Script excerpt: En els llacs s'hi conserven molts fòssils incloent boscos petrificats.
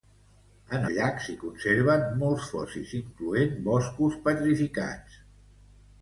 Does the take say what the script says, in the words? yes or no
no